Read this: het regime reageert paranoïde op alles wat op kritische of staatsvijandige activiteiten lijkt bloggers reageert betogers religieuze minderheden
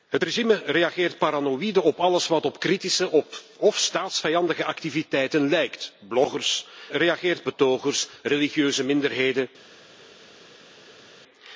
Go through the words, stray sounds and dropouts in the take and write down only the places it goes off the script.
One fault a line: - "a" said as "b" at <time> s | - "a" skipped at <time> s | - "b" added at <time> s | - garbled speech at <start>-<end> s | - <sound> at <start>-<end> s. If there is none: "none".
none